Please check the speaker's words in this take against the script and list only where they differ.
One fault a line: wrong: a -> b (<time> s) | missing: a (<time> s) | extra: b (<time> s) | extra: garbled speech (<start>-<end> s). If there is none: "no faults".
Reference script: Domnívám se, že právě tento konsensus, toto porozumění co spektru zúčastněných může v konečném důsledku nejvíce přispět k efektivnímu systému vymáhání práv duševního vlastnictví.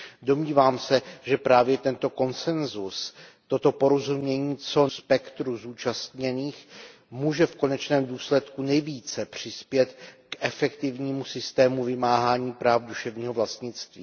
no faults